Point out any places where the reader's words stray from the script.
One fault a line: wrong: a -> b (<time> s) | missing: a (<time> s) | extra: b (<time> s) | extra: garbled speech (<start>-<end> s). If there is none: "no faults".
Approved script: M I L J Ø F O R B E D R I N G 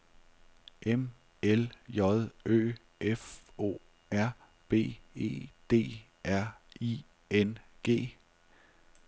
missing: I (1.1 s)